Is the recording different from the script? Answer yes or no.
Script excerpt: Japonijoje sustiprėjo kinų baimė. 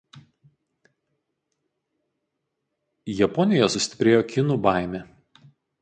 no